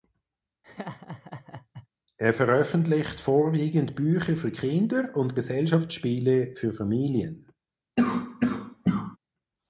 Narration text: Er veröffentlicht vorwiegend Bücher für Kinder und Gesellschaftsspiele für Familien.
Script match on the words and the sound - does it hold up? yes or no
no